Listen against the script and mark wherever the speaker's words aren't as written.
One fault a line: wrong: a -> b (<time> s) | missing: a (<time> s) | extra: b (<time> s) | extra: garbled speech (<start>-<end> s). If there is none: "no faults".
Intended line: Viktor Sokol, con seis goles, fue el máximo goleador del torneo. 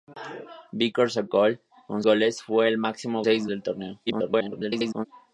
missing: seis (2.0 s)
wrong: goleador -> seis (3.2 s)
extra: garbled speech (4.1-5.1 s)